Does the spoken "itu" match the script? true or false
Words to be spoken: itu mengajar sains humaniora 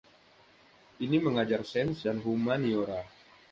false